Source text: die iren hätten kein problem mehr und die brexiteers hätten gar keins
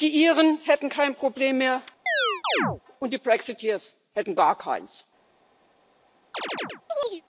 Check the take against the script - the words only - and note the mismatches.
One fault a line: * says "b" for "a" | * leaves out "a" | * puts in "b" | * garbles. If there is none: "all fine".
all fine